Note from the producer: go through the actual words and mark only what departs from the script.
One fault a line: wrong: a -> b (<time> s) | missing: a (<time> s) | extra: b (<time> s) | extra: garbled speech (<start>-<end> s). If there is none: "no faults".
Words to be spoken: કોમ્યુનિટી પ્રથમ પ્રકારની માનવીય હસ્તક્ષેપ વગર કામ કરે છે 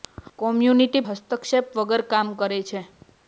missing: પ્રથમ પ્રકારની માનવીય (1.0 s)